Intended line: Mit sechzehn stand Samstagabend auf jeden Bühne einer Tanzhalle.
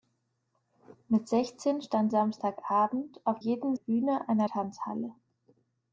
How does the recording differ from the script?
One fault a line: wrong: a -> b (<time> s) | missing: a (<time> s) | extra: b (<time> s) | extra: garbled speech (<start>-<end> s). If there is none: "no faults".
no faults